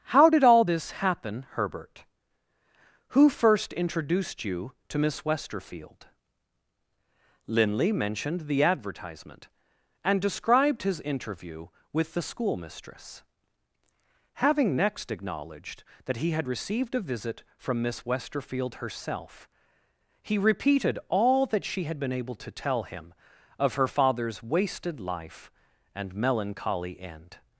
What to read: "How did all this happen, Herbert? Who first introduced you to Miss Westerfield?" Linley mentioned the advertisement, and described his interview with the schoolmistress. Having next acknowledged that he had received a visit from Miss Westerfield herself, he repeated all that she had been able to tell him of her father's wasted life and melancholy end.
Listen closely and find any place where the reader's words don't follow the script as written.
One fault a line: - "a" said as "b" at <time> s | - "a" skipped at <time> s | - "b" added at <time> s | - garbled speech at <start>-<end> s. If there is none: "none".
none